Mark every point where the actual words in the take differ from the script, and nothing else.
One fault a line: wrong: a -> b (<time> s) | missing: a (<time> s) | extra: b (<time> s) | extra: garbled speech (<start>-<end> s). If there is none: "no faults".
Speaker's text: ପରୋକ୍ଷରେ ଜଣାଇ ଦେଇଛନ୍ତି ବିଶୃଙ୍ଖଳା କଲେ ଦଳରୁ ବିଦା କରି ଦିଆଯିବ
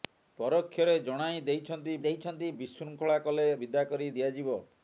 extra: ଦେଇଛନ୍ତି (2.0 s)
missing: ଦଳରୁ (3.5 s)